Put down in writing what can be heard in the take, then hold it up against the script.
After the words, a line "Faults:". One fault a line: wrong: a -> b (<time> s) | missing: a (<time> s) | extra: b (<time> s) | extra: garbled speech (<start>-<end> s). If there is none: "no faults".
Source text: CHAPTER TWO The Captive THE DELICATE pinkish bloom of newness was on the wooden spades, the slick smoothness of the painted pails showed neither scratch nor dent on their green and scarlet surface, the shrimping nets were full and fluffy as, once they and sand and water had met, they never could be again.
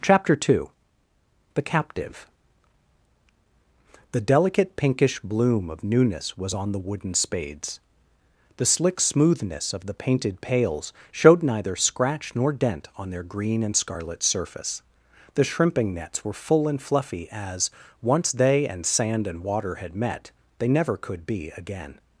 CHAPTER TWO The Captive THE DELICATE pinkish bloom of newness was on the wooden spades, the slick smoothness of the painted pails showed neither scratch nor dent on their green and scarlet surface, the shrimping nets were full and fluffy as, once they and sand and water had met, they never could be again.
Faults:
no faults